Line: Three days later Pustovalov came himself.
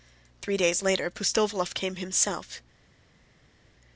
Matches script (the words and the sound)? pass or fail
pass